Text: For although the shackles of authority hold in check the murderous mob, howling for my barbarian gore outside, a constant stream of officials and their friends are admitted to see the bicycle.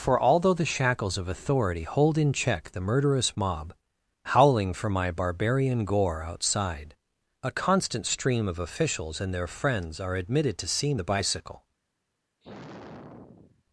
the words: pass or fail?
pass